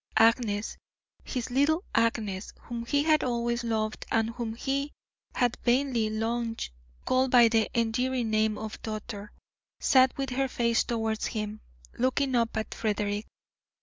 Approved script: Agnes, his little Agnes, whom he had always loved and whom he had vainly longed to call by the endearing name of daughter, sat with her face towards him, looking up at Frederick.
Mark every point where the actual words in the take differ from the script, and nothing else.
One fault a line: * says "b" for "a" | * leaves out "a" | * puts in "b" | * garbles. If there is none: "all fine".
all fine